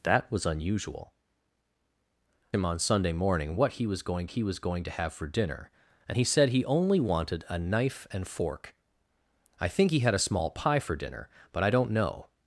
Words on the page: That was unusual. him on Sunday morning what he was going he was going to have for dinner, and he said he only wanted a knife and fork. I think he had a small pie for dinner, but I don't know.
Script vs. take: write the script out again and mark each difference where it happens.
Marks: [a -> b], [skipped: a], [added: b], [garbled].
That was unusual. him on Sunday morning what he was going he was going to have for dinner, and he said he only wanted a knife and fork. I think he had a small pie for dinner, but I don't know.